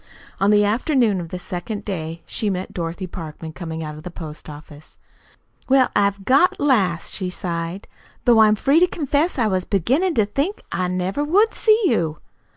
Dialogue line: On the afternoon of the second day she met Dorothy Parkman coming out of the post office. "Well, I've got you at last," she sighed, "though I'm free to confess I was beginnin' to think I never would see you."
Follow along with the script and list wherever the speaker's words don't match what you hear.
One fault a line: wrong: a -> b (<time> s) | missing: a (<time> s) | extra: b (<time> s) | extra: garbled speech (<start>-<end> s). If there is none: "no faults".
missing: you (6.5 s)